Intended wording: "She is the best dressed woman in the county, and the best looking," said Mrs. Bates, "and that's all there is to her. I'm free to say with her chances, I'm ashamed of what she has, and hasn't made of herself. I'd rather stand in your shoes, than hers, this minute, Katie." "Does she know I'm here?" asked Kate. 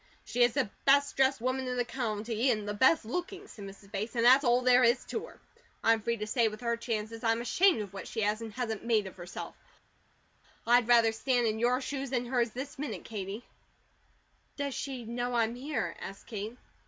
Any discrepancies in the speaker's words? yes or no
no